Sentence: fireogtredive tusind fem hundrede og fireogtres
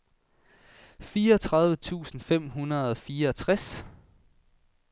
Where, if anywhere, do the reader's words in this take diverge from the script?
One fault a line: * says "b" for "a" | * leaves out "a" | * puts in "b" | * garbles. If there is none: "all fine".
all fine